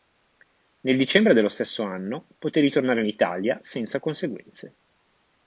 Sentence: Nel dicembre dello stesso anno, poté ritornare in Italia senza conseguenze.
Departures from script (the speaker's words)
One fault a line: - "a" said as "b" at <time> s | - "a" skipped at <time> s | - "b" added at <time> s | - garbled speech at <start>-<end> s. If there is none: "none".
none